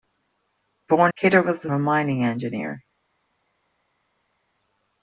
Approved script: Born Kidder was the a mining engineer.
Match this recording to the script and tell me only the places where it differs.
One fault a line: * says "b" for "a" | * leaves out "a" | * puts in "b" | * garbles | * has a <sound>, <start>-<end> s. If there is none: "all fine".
all fine